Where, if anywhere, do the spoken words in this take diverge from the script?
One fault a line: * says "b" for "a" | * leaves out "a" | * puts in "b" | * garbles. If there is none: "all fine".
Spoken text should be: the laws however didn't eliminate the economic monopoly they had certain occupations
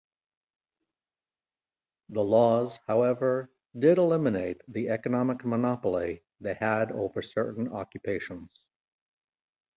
* says "did" for "didn't"
* puts in "over"